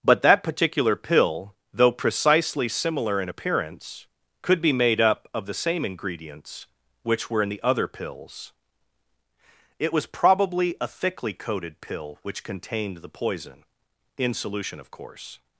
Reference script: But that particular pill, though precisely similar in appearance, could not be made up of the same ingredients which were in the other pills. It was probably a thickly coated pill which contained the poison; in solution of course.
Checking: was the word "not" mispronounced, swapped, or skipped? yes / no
yes